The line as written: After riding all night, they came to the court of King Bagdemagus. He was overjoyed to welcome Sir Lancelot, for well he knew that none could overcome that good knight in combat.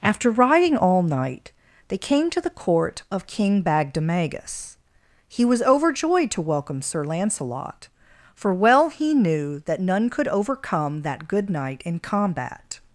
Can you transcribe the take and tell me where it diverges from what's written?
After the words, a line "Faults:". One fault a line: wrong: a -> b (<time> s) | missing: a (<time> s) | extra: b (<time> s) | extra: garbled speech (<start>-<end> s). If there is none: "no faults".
After riding all night, they came to the court of King Bagdemagus. He was overjoyed to welcome Sir Lancelot, for well he knew that none could overcome that good knight in combat.
Faults:
no faults